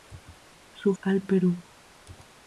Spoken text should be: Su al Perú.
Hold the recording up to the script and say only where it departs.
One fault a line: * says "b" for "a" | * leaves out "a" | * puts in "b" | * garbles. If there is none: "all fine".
all fine